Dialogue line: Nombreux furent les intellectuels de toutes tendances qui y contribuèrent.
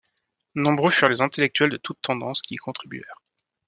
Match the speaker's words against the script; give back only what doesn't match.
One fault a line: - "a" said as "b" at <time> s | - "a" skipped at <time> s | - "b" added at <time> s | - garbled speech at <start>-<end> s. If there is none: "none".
none